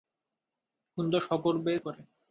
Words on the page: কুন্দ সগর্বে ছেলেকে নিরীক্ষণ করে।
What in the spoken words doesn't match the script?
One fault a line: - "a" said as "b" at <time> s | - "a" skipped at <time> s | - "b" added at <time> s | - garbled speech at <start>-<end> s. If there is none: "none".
- "ছেলেকে নিরীক্ষণ" skipped at 1.7 s